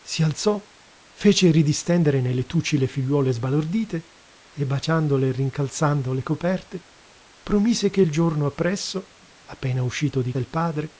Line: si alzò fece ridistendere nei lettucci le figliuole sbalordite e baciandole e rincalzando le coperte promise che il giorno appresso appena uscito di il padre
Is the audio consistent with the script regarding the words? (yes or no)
yes